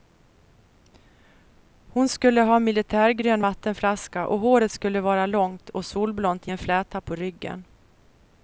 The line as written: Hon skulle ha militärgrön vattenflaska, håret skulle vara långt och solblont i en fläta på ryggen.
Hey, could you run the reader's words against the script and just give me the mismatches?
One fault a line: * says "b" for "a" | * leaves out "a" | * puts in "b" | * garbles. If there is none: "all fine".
* puts in "och"